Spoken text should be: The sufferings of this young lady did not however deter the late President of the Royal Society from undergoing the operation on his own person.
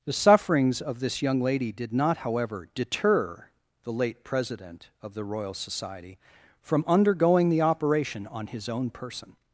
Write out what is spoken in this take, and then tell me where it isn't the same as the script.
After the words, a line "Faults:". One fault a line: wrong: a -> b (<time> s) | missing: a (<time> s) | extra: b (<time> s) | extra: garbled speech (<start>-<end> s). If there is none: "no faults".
The sufferings of this young lady did not however deter the late President of the Royal Society from undergoing the operation on his own person.
Faults:
no faults